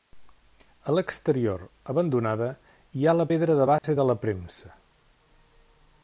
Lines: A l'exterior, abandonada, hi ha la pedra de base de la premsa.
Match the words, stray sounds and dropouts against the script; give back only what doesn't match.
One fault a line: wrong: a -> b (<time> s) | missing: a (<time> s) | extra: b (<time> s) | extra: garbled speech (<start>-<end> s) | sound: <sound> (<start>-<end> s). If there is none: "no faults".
sound: dropout (3.8-3.8 s)